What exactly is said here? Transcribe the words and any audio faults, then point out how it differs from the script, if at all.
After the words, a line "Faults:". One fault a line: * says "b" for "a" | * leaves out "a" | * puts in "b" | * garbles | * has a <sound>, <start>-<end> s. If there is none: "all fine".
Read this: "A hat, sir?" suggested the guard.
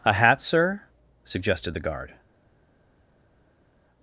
"A hat, sir?" suggested the guard.
Faults:
all fine